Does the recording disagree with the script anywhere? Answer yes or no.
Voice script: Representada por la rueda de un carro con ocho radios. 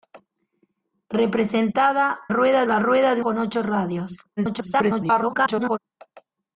yes